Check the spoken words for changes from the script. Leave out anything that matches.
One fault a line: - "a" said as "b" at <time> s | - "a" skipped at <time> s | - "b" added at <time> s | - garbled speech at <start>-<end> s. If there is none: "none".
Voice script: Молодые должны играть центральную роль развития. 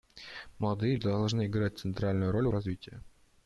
none